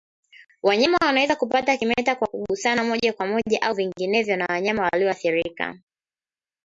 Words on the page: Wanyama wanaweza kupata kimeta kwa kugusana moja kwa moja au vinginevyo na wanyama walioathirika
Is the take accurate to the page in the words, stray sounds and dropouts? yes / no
yes